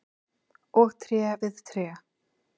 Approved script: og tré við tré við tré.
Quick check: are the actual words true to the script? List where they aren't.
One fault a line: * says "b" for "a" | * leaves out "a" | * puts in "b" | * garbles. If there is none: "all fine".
* leaves out "við tré"